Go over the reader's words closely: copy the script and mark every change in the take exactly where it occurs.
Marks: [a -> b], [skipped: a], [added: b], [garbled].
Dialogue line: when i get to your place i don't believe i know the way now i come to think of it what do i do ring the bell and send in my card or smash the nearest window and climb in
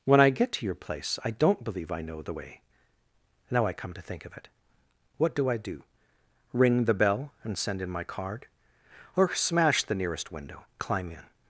when i get to your place i don't believe i know the way now i come to think of it what do i do ring the bell and send in my card or smash the nearest window [skipped: and] climb in